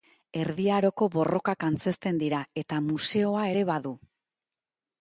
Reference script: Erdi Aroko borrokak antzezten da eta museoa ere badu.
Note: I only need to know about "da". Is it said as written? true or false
false